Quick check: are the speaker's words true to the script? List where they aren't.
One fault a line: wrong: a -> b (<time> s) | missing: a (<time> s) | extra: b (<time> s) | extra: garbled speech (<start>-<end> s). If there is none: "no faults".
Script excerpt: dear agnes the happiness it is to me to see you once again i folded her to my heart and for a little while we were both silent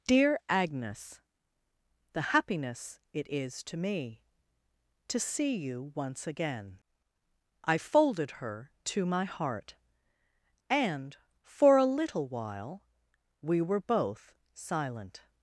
no faults